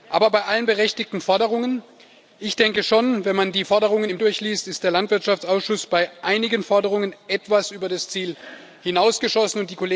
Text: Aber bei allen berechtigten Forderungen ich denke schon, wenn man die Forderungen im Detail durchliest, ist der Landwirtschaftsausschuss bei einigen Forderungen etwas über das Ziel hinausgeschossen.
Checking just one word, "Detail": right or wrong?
wrong